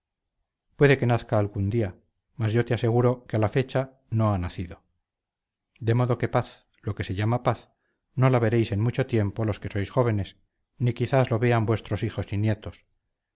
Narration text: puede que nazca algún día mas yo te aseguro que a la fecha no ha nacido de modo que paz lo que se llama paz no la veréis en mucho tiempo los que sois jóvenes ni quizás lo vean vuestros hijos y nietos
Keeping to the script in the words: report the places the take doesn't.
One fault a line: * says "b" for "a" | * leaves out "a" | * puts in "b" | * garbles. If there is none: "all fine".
all fine